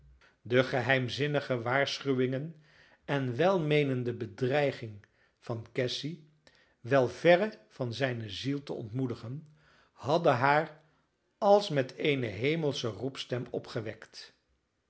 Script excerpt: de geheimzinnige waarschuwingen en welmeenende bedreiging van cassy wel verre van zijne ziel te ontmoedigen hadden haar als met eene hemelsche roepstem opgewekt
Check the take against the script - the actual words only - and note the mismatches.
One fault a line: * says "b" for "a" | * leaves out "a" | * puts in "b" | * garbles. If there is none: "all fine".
all fine